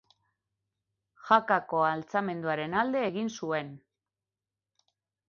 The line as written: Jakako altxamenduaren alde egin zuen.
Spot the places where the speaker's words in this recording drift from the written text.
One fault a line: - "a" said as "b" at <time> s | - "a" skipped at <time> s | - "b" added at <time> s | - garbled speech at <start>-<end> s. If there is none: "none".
none